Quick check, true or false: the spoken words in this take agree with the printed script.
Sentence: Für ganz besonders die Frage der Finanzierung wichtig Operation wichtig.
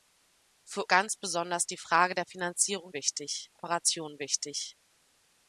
true